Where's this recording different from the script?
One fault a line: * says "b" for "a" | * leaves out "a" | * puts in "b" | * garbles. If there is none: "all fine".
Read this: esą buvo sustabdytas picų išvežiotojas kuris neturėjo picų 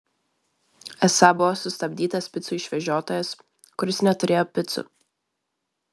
all fine